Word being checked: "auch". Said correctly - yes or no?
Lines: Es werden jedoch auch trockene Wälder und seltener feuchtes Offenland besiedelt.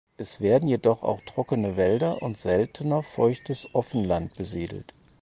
yes